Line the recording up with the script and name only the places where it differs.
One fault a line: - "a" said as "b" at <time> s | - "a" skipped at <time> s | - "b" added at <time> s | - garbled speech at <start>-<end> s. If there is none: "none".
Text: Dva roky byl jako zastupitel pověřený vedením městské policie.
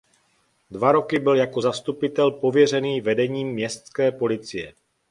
none